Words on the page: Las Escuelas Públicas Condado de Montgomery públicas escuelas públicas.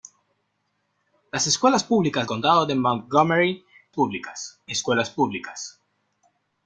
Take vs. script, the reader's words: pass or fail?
pass